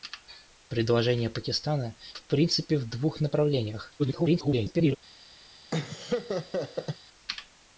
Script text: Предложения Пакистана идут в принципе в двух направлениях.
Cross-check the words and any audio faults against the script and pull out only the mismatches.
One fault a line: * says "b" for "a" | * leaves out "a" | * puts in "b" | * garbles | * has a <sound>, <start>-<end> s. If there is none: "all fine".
* leaves out "идут"
* garbles
* has a laugh, 5.7-7.0 s